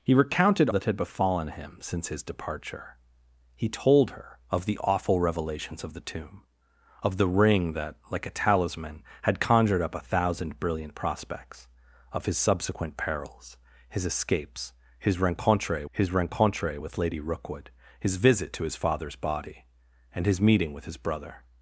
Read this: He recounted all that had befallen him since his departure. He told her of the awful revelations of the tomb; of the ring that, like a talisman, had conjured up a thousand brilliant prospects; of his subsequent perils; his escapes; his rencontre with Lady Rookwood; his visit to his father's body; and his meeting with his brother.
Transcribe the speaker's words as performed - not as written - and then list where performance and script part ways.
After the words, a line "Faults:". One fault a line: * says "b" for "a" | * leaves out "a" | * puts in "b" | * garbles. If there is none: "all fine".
He recounted that had befallen him since his departure. He told her of the awful revelations of the tomb; of the ring that, like a talisman, had conjured up a thousand brilliant prospects; of his subsequent perils; his escapes; his rencontre his rencontre with Lady Rookwood; his visit to his father's body; and his meeting with his brother.
Faults:
* leaves out "all"
* puts in "his rencontre"